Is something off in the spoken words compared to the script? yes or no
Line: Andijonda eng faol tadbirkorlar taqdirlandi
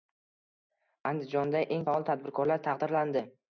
no